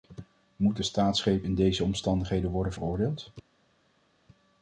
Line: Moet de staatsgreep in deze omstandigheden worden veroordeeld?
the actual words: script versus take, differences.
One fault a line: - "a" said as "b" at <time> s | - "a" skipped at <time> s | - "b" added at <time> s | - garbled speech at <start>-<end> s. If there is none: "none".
none